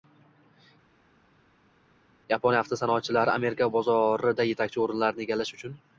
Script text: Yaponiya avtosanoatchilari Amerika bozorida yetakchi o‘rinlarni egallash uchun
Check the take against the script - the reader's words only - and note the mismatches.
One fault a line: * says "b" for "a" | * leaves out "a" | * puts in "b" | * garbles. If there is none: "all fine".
all fine